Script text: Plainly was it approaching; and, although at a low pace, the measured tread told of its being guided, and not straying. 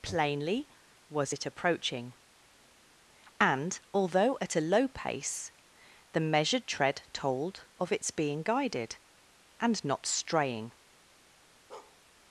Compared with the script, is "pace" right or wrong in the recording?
right